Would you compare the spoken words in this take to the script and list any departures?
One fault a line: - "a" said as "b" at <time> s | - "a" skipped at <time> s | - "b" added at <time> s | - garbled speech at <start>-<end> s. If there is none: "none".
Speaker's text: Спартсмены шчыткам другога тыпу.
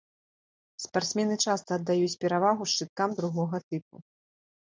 - "часта аддаюць перавагу" added at 1.5 s